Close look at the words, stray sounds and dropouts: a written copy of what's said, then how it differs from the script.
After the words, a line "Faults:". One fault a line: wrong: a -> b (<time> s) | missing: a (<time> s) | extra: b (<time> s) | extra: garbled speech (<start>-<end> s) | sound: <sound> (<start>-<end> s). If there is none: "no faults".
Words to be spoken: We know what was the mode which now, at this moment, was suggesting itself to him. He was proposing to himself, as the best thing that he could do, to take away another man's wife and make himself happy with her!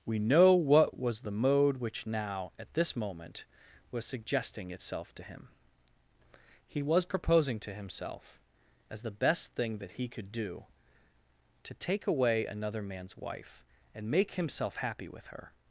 We know what was the mode which now, at this moment, was suggesting itself to him. He was proposing to himself, as the best thing that he could do, to take away another man's wife and make himself happy with her!
Faults:
no faults